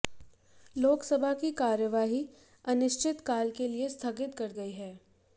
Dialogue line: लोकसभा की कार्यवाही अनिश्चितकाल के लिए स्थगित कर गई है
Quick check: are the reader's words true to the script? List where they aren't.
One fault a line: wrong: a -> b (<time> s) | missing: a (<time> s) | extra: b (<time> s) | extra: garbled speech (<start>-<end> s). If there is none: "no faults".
no faults